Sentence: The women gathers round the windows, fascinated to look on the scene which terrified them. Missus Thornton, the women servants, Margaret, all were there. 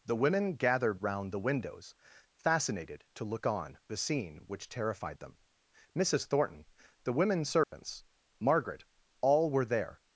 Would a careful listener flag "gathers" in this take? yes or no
yes